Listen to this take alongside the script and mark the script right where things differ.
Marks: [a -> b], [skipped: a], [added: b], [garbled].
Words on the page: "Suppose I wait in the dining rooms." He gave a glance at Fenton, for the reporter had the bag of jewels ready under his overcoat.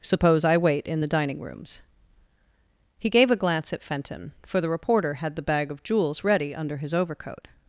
"Suppose I wait in the dining rooms." He gave a glance at Fenton, for the reporter had the bag of jewels ready under his overcoat.